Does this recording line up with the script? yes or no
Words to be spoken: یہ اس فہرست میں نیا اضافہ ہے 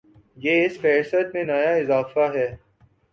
yes